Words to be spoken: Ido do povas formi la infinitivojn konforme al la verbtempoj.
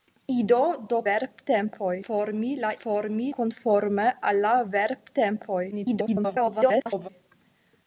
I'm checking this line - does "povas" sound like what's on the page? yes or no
no